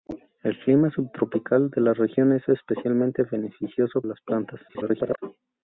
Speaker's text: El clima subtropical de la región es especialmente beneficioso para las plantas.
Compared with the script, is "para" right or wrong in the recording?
wrong